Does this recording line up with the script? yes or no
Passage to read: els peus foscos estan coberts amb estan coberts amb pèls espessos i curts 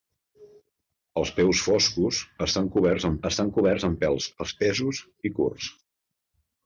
yes